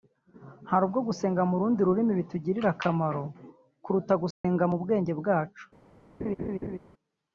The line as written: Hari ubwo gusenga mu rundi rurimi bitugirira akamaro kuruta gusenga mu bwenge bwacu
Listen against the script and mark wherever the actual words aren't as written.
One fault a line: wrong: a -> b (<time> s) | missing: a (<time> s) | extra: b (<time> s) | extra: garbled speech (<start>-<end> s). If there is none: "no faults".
no faults